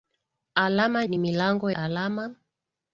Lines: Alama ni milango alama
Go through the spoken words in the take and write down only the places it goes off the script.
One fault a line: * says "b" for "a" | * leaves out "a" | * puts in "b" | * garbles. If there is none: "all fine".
all fine